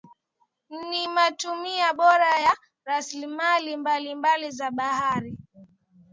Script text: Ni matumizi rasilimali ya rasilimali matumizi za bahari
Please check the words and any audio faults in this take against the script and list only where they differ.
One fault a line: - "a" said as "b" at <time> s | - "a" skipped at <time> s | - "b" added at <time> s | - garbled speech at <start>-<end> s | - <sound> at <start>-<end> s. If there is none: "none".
- "rasilimali" said as "bora" at 2.0 s
- "matumizi" said as "mbalimbali" at 3.8 s